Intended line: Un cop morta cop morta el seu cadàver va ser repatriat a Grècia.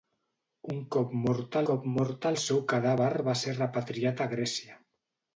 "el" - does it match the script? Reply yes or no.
yes